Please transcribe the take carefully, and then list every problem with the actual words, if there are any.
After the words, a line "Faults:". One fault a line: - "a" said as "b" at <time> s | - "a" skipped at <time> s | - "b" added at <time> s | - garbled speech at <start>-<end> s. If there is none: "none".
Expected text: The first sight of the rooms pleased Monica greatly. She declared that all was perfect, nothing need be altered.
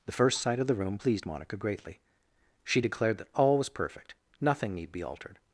The first sight of the room pleased Monica greatly. She declared that all was perfect, nothing need be altered.
Faults:
- "rooms" said as "room" at 0.8 s